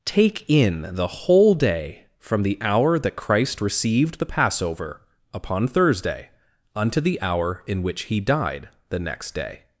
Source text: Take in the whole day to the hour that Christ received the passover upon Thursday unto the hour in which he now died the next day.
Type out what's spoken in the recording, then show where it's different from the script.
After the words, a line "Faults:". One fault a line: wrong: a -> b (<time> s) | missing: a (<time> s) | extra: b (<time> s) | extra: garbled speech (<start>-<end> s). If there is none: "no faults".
Take in the whole day from the hour that Christ received the passover upon Thursday unto the hour in which he died the next day.
Faults:
wrong: to -> from (2.2 s)
missing: now (8.2 s)